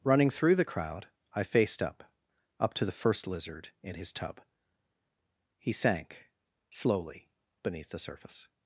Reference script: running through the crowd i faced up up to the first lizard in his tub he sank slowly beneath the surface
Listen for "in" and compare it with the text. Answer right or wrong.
right